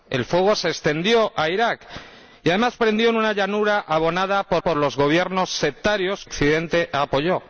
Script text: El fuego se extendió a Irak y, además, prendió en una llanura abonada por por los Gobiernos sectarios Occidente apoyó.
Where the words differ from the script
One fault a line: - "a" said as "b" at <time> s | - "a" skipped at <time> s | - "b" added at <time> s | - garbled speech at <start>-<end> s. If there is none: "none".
none